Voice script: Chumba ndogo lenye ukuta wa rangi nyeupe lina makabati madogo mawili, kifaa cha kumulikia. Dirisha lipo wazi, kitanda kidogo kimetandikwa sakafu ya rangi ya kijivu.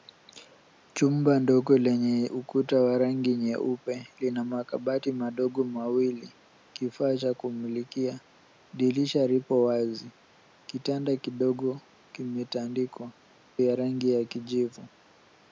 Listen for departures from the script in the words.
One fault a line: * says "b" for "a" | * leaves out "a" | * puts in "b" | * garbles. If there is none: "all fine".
* leaves out "sakafu"